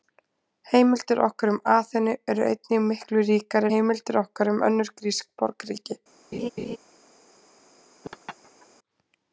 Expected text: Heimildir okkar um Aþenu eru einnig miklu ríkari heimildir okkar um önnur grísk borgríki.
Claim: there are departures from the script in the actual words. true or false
false